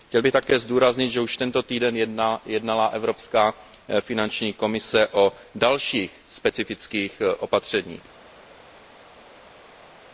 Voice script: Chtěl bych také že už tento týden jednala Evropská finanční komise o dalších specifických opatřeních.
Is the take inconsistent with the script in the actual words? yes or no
yes